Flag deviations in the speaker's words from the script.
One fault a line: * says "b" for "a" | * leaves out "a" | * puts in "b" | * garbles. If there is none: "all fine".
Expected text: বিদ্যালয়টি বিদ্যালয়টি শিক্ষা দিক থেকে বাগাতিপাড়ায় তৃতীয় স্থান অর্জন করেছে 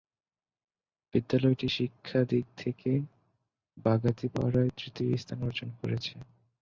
* leaves out "বিদ্যালয়টি"